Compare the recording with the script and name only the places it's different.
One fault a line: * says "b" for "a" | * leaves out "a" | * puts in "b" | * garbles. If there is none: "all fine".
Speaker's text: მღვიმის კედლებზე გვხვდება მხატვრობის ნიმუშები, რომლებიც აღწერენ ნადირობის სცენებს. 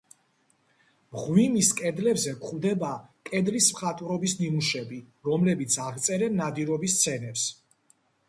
* puts in "კედლის"